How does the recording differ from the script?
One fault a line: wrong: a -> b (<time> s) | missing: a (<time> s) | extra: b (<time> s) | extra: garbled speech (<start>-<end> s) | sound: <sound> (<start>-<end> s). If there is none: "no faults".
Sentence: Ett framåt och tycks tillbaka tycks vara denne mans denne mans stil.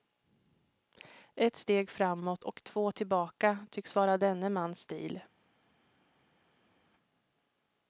extra: steg (1.6 s)
wrong: tycks -> två (2.6 s)
missing: denne mans (4.8 s)